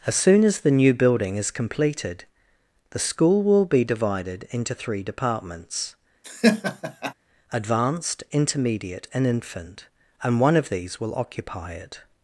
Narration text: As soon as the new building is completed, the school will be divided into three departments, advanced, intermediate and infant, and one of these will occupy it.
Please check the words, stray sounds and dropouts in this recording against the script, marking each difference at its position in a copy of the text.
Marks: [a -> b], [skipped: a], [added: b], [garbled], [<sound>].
As soon as the new building is completed, the school will be divided into three departments, [laugh] advanced, intermediate and infant, and one of these will occupy it.